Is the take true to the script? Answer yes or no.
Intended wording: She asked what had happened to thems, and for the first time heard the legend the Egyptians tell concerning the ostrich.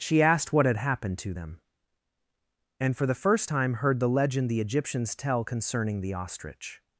no